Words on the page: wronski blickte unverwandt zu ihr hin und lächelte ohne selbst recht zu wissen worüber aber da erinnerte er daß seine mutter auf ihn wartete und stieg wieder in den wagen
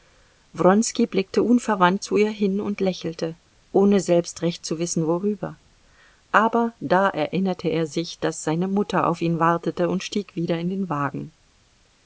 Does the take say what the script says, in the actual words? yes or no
no